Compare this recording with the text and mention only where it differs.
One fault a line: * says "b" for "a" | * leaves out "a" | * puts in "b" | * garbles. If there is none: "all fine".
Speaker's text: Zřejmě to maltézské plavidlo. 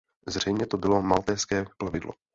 * puts in "bylo"